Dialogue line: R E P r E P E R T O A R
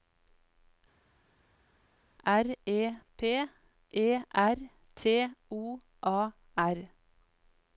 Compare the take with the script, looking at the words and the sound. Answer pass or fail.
fail